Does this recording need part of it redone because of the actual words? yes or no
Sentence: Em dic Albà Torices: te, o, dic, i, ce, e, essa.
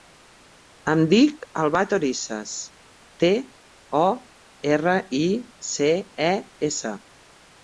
yes